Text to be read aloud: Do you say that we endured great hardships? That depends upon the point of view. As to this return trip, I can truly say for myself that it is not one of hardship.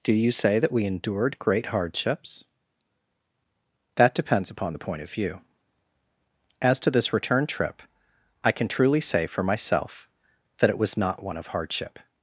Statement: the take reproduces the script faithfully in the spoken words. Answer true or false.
false